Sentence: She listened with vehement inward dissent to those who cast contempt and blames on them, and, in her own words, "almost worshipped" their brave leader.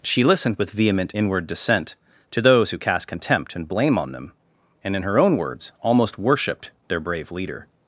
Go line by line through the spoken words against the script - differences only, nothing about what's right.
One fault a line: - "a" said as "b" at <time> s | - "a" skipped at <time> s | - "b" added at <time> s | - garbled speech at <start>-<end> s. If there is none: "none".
- "blames" said as "blame" at 3.7 s